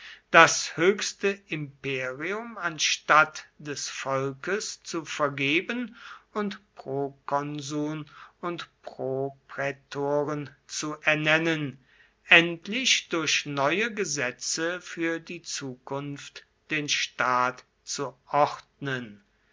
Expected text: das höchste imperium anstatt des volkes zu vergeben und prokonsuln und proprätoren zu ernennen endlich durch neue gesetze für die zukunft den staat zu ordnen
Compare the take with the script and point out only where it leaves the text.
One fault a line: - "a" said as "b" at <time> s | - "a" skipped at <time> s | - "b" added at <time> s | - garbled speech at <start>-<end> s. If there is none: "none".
none